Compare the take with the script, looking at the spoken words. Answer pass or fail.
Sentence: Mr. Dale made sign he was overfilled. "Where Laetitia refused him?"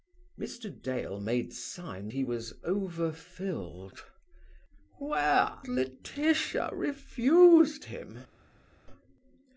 pass